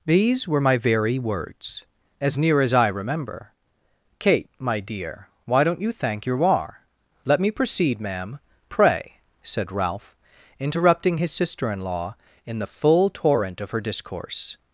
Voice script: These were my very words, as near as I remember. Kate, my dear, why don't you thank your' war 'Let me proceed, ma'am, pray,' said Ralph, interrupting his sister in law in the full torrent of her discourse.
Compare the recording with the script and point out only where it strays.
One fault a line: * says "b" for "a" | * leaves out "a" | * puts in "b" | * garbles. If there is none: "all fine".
all fine